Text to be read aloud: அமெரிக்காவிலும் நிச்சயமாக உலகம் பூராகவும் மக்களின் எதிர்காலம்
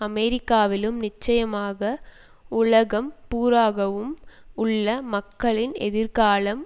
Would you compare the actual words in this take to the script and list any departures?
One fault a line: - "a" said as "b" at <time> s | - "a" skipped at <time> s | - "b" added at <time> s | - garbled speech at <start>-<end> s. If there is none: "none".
- "உள்ள" added at 4.5 s